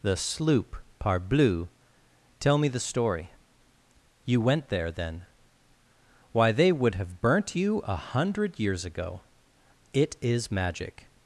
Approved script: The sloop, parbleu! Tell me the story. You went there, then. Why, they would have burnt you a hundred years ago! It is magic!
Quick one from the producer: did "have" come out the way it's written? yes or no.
yes